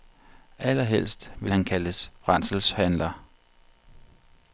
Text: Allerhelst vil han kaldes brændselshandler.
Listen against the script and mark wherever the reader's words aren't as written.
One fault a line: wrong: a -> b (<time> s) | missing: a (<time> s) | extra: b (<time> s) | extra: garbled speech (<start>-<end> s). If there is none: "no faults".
no faults